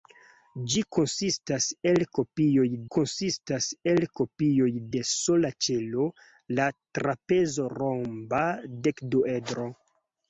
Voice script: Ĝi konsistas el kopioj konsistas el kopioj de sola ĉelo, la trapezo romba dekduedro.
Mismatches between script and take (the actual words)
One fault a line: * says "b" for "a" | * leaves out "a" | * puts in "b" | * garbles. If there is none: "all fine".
all fine